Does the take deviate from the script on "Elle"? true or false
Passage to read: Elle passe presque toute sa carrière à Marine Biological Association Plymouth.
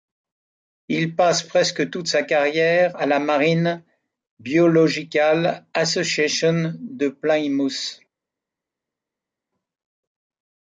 true